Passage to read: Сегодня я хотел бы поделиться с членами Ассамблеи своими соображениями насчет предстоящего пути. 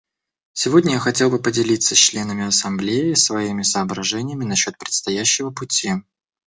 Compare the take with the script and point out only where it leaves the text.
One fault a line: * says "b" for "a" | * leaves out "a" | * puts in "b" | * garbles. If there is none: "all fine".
all fine